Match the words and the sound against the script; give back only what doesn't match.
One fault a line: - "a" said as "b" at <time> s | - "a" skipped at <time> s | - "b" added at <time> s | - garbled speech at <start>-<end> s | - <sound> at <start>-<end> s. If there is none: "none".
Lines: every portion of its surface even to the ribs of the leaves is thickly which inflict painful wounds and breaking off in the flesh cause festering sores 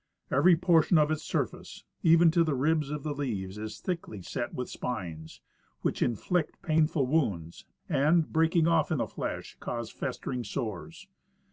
- "set with spines" added at 4.2 s